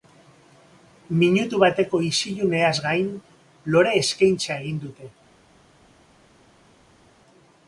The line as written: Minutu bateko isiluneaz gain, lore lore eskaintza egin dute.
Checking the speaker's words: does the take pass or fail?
fail